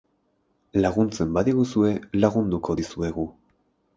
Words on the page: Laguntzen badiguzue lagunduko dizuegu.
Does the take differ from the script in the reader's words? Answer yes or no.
no